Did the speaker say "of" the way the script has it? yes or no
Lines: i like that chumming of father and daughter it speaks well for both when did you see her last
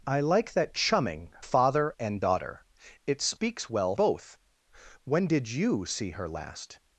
no